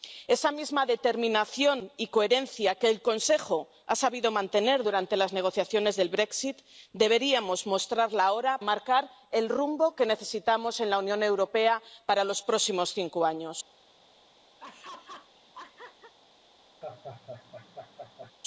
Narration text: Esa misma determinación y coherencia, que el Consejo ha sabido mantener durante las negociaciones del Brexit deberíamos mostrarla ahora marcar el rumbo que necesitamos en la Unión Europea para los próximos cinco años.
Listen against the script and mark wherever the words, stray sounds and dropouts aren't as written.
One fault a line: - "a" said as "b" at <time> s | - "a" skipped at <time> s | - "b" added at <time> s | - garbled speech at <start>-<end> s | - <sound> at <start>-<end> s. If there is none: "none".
- laugh at 14.6-16.1 s
- laugh at 16.8-18.3 s